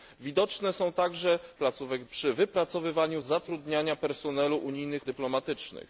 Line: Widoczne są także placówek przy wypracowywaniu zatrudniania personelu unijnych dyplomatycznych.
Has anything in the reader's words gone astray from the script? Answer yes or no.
no